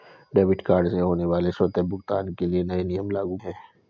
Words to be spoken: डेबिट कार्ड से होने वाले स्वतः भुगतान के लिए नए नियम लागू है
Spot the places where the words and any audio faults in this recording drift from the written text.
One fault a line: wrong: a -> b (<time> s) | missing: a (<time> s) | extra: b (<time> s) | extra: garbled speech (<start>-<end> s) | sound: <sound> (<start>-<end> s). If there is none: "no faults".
no faults